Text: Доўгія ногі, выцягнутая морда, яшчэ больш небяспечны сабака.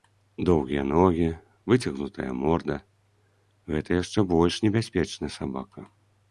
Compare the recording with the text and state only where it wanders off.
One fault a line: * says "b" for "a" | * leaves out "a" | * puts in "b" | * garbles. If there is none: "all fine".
* puts in "гэта"